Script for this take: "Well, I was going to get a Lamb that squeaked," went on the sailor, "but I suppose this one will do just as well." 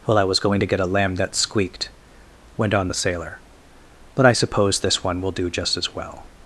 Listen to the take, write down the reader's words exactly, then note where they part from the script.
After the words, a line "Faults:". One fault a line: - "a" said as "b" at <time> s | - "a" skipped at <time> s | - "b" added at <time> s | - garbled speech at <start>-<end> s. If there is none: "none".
"Well, I was going to get a Lamb that squeaked," went on the sailor, "but I suppose this one will do just as well."
Faults:
none